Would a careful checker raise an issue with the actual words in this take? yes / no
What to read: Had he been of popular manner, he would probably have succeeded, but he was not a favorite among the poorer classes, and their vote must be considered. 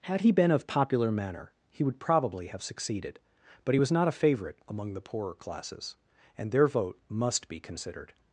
no